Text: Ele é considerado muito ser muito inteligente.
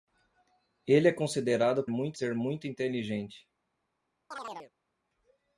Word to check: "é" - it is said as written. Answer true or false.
true